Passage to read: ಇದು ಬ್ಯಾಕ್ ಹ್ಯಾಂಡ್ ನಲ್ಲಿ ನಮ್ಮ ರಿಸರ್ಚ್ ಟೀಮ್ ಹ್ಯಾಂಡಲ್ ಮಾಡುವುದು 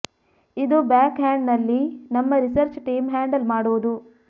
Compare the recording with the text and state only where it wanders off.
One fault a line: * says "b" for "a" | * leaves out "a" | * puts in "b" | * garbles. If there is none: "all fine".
all fine